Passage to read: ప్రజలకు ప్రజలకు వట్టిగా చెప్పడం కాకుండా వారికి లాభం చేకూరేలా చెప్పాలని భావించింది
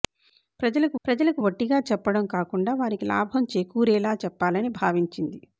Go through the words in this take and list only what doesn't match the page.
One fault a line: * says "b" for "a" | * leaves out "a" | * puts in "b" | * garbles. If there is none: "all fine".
all fine